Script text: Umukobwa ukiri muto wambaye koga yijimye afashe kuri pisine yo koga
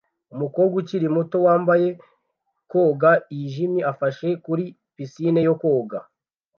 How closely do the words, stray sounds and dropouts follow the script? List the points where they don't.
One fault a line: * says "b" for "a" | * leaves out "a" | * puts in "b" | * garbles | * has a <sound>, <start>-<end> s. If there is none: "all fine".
all fine